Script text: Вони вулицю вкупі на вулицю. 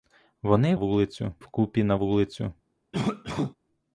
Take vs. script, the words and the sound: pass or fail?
fail